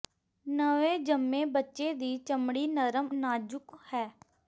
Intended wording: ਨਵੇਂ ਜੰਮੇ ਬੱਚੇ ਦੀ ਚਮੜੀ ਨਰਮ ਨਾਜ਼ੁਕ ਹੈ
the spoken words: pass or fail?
pass